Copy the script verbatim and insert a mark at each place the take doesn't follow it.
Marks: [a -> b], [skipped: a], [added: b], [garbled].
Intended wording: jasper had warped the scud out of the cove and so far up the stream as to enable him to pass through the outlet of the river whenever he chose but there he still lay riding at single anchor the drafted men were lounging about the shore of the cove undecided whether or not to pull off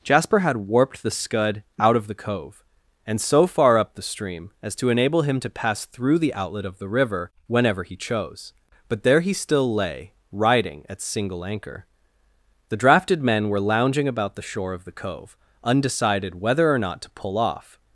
jasper had warped the scud out of the cove and so far up the stream as to enable him to pass through the outlet of the river whenever he chose but there he still lay riding at single anchor the drafted men were lounging about the shore of the cove undecided whether or not to pull off